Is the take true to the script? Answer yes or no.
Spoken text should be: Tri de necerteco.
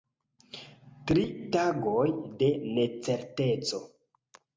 no